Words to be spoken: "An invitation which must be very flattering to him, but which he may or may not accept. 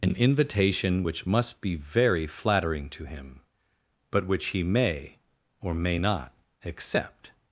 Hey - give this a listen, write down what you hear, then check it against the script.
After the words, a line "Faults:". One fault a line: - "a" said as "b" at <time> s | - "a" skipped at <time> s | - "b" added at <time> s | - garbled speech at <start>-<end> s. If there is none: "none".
"An invitation which must be very flattering to him, but which he may or may not accept.
Faults:
none